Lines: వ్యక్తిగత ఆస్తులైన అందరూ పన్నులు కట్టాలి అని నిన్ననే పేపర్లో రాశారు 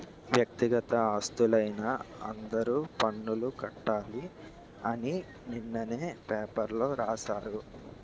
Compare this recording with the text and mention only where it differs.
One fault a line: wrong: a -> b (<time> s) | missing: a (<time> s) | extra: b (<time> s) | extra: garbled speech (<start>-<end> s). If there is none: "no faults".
no faults